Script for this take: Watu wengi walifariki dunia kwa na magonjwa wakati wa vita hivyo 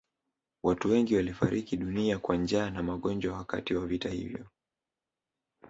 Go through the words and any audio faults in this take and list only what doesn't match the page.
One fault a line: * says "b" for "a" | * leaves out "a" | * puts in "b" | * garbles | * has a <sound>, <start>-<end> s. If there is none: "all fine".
* puts in "njaa"